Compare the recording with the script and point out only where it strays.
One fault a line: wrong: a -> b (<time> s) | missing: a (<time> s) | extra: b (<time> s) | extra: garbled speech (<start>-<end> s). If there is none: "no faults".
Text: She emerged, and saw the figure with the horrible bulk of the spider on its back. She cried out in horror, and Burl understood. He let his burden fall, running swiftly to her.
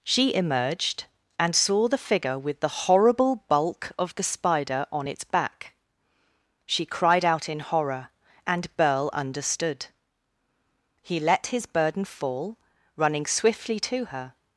no faults